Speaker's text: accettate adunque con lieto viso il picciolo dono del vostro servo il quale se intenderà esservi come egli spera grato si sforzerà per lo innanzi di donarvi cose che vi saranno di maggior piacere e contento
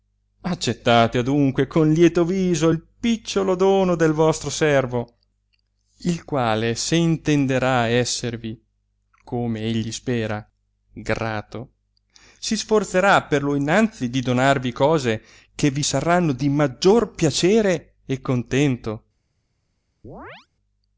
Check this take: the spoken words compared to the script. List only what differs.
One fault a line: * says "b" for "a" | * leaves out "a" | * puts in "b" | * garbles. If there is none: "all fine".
all fine